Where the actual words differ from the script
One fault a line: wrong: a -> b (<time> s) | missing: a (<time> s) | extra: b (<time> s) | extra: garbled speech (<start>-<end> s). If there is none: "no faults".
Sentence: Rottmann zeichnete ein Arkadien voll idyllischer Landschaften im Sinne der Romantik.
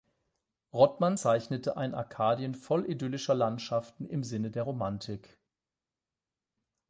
no faults